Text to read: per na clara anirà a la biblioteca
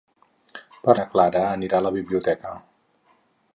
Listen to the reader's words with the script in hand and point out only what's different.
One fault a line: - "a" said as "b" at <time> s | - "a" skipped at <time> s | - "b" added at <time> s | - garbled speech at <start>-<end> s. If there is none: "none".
none